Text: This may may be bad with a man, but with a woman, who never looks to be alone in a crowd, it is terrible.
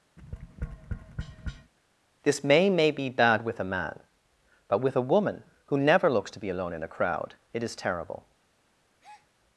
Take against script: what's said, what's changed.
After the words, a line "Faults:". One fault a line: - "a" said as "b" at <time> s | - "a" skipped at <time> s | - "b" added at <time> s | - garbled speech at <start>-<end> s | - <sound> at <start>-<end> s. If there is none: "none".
This may may be bad with a man, but with a woman, who never looks to be alone in a crowd, it is terrible.
Faults:
- tap at 0.2-1.7 s
- breath at 9.0-9.3 s